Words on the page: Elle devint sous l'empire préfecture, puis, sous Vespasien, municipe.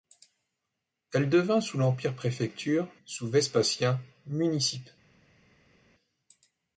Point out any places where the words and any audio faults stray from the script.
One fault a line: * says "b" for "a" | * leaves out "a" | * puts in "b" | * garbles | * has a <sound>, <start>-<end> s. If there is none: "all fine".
* leaves out "puis"